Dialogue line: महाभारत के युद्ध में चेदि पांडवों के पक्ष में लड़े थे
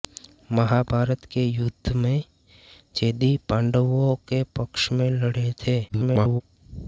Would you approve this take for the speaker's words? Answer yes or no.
no